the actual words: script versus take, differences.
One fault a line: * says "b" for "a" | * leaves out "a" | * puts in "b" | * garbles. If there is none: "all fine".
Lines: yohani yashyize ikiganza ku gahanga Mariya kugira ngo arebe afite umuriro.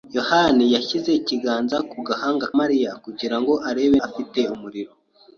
all fine